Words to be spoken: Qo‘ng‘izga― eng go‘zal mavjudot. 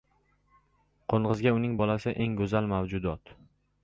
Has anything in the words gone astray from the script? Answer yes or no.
yes